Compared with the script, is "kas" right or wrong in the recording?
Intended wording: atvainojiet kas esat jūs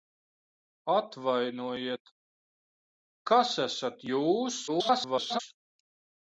right